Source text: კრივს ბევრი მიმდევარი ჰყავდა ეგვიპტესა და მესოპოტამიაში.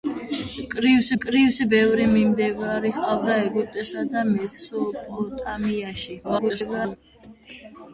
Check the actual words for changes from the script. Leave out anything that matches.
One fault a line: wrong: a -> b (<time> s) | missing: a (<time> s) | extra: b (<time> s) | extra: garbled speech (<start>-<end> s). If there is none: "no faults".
extra: კრივს (1.2 s)
extra: garbled speech (6.2-7.0 s)